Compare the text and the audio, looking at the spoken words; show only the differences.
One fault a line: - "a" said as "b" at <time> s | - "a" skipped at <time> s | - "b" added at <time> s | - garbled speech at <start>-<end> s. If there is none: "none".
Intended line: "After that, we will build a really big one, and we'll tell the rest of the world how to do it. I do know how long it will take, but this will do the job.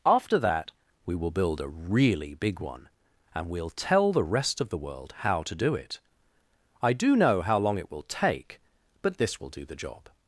none